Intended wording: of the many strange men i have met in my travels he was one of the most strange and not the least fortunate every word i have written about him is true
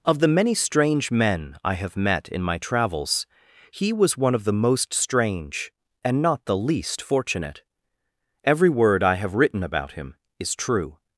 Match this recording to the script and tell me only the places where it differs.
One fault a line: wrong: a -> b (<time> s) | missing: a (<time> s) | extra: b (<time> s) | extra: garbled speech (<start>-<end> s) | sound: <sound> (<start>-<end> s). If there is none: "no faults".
no faults